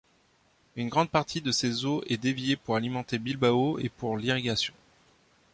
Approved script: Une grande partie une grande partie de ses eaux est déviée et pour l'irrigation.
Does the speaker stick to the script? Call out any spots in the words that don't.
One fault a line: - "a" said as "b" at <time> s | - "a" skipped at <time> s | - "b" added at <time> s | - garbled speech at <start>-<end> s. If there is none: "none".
- "une grande partie" skipped at 1.4 s
- "pour alimenter Bilbao" added at 2.5 s